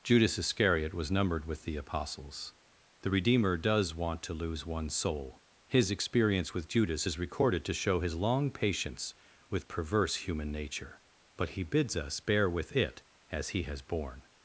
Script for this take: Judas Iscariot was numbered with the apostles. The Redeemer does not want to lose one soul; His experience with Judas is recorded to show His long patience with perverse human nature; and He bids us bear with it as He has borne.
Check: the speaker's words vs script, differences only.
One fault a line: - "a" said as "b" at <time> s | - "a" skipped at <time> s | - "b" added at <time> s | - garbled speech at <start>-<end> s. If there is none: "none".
- "not" skipped at 3.9 s
- "and" said as "but" at 11.4 s